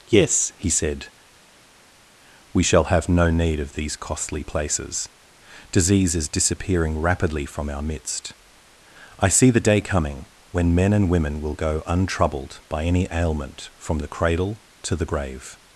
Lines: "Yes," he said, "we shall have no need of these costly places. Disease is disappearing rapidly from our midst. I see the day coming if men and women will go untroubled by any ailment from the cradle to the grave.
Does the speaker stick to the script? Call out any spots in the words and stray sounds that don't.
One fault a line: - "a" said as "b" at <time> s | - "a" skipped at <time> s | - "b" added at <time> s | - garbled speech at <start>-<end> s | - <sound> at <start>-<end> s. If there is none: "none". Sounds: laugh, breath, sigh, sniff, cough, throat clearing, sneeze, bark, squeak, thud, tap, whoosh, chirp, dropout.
- "if" said as "when" at 10.5 s